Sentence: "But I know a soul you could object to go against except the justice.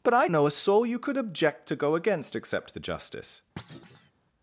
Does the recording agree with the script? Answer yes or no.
yes